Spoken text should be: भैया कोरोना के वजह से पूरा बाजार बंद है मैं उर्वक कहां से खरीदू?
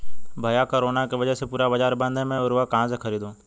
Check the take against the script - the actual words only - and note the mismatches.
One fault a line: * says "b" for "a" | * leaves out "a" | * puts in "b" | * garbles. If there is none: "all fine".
all fine